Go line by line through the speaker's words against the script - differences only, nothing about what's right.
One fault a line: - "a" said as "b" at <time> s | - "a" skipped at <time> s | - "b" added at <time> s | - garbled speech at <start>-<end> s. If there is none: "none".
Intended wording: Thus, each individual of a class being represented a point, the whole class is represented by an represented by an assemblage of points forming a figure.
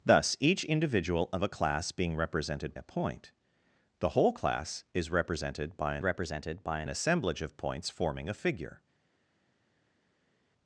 none